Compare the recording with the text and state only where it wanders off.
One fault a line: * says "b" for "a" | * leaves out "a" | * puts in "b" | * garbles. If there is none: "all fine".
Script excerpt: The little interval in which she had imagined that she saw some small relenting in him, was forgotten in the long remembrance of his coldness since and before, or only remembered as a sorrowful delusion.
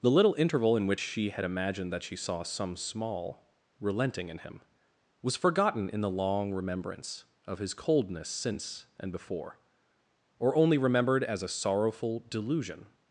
all fine